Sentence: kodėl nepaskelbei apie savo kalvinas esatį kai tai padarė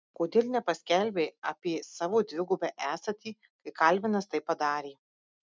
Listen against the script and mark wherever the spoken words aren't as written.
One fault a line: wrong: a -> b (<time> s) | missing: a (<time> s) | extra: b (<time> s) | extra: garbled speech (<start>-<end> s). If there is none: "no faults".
wrong: kalvinas -> dvigubą (2.3 s)
extra: kalvinas (3.8 s)